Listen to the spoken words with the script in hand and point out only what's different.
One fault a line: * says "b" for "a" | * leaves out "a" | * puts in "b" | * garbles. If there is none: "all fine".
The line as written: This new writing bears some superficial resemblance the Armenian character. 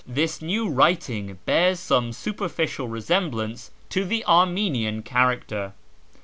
* puts in "to"